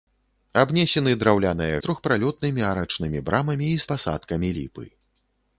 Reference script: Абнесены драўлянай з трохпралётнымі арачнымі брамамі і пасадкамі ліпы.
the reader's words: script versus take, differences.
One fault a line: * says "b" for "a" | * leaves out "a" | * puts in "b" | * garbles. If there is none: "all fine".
all fine